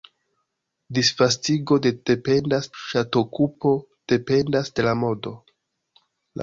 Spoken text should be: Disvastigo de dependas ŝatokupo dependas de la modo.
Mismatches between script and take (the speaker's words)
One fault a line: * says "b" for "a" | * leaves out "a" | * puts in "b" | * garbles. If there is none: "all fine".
all fine